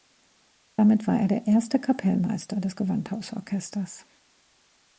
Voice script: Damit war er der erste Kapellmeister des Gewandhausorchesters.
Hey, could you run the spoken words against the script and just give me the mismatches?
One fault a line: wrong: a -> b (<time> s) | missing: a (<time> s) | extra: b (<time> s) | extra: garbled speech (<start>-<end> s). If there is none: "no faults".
no faults